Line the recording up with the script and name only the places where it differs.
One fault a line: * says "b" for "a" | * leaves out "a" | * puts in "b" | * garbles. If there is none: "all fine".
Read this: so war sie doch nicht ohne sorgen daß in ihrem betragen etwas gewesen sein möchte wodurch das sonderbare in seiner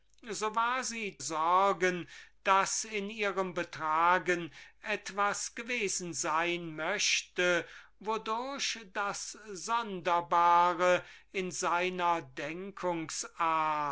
* leaves out "doch nicht ohne"